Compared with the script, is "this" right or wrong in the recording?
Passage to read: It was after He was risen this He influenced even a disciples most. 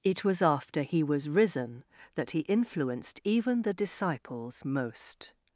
wrong